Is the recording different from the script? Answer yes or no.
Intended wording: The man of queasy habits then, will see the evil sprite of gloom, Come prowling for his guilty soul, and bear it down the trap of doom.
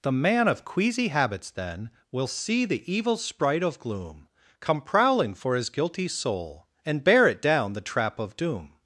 no